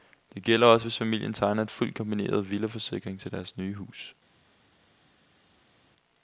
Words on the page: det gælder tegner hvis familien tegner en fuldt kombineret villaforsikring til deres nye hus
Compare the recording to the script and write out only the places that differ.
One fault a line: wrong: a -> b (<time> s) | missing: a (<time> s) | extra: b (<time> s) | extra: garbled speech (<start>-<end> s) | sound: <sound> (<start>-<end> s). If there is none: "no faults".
wrong: tegner -> også (0.7 s)